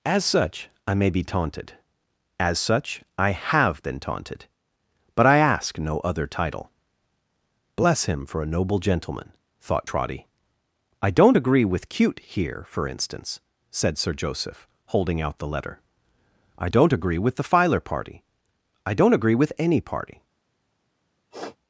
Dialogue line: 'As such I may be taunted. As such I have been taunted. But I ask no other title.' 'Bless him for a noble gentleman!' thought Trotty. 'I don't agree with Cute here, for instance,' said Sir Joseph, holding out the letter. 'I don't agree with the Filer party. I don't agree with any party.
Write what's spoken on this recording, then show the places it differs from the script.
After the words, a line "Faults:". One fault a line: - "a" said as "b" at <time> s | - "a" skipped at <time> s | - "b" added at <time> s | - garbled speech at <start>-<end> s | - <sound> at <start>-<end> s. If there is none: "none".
'As such I may be taunted. As such I have been taunted. But I ask no other title.' 'Bless him for a noble gentleman!' thought Trotty. 'I don't agree with Cute here, for instance,' said Sir Joseph, holding out the letter. 'I don't agree with the Filer party. I don't agree with any party.
Faults:
- sniff at 21.3-21.6 s